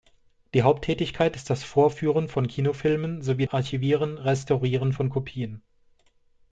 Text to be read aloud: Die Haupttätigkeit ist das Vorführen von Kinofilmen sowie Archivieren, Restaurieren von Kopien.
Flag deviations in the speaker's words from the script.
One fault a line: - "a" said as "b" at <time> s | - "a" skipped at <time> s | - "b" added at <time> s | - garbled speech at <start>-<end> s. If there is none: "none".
none